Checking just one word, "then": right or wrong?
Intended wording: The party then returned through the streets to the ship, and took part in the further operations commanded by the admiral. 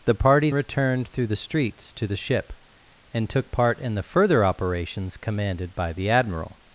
wrong